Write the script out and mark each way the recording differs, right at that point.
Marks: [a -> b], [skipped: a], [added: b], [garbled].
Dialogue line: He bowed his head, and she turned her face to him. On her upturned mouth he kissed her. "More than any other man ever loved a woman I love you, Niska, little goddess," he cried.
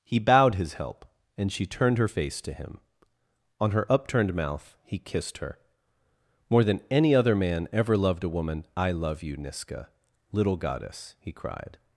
He bowed his [head, -> help] and she turned her face to him. On her upturned mouth he kissed her. "More than any other man ever loved a woman I love you, Niska, little goddess," he cried.